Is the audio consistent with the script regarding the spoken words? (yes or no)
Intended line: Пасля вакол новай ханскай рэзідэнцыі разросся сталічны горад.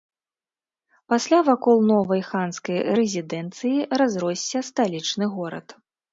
yes